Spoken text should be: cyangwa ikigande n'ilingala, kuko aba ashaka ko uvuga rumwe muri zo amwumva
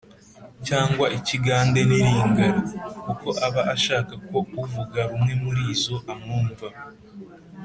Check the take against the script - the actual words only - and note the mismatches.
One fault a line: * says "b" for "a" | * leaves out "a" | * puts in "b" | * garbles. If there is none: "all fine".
all fine